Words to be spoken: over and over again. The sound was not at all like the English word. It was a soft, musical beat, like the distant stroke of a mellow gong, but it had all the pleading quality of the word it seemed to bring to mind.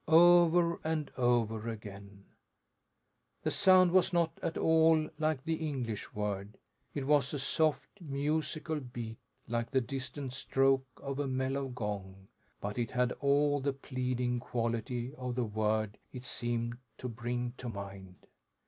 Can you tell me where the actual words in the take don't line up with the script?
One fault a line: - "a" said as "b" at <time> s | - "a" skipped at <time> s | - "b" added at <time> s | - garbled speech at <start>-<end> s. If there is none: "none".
none